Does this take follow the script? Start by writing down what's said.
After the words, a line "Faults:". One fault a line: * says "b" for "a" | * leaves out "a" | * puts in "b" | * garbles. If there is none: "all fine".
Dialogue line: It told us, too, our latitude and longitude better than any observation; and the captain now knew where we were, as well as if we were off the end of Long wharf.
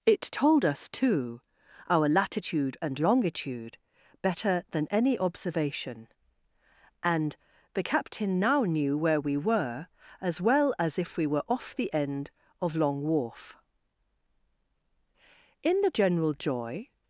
It told us, too, our latitude and longitude better than any observation; and the captain now knew where we were, as well as if we were off the end of Long wharf. In the general joy
Faults:
* puts in "In the general joy"